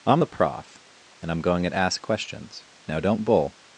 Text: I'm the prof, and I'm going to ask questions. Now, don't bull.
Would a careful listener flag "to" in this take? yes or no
yes